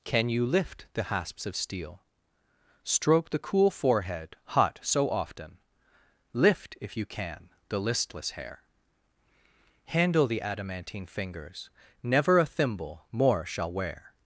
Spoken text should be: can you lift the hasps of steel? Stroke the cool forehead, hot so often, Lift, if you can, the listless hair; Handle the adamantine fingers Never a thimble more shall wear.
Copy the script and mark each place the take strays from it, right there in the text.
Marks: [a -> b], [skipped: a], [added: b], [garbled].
can you lift the hasps of steel? Stroke the cool forehead, hot so often, Lift, if you can, the listless hair; Handle the adamantine fingers Never a thimble more shall wear.